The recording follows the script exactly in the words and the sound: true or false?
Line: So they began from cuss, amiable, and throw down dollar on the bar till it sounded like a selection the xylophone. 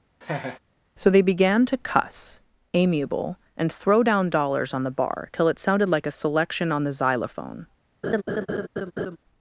false